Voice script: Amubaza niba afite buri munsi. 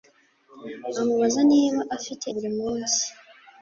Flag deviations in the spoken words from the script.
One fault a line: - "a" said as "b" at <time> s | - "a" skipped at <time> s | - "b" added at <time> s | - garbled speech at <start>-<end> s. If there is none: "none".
none